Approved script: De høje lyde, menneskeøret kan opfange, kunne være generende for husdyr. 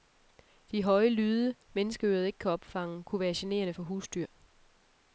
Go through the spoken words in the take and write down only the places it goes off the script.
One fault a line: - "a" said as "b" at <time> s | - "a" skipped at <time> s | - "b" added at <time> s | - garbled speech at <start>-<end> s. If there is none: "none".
- "ikke" added at 2.2 s